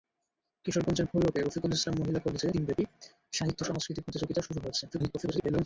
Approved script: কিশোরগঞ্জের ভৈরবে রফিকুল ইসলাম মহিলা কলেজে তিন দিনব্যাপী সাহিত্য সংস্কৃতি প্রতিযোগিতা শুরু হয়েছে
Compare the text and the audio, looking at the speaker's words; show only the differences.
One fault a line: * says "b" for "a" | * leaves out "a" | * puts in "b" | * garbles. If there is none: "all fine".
* leaves out "তিন"
* garbles